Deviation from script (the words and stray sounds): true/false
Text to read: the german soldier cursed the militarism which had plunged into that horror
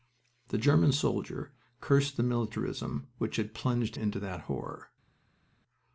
false